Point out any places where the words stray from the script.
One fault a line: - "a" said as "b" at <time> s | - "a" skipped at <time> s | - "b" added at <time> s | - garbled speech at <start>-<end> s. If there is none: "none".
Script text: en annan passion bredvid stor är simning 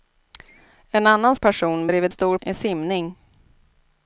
none